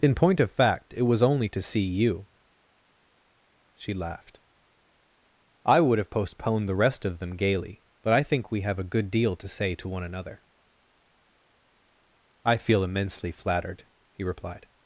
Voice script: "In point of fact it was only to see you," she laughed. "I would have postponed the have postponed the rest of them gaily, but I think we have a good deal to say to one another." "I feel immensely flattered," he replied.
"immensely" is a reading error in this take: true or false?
false